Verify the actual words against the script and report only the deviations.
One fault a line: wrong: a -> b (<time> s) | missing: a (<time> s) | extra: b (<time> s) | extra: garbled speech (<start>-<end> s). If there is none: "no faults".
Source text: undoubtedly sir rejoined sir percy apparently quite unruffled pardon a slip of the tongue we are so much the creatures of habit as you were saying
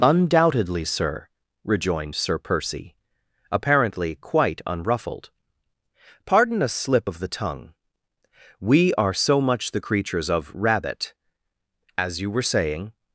wrong: habit -> rabbit (10.5 s)